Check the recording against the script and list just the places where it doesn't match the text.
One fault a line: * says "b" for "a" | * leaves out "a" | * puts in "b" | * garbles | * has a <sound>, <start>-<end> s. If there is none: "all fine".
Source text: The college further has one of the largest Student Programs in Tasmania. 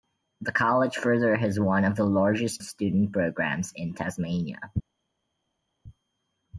all fine